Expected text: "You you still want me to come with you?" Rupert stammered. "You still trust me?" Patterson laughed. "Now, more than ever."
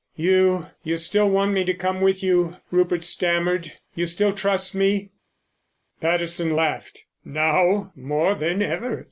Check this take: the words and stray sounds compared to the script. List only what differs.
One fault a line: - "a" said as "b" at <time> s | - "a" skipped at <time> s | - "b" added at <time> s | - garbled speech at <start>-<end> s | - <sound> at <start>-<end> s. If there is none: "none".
none